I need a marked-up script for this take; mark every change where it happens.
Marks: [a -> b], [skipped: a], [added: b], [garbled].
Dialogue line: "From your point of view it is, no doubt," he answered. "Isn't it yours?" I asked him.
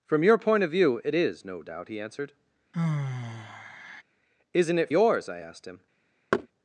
"From your point of view it is, no doubt," he answered. "Isn't it yours?" I asked him.